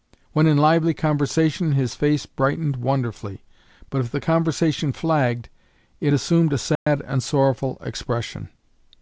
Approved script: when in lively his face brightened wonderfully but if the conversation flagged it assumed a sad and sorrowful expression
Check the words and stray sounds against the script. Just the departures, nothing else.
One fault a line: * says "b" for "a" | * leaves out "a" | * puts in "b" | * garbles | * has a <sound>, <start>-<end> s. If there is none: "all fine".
* puts in "conversation"
* has a dropout, 6.8-6.9 s